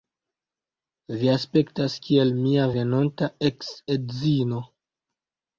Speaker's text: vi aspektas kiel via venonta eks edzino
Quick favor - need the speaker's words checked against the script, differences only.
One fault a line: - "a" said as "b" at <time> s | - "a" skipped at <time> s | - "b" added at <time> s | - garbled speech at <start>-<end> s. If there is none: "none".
- "via" said as "mia" at 2.4 s